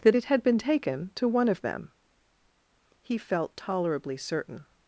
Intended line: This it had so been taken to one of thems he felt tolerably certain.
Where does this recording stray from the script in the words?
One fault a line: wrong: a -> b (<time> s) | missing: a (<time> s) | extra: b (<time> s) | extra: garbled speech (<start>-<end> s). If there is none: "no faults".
wrong: This -> That (0.0 s)
missing: so (0.4 s)
wrong: thems -> them (1.6 s)